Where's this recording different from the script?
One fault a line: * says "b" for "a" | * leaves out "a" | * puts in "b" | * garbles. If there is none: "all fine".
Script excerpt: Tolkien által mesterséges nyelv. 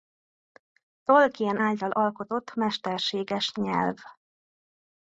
* puts in "alkotott"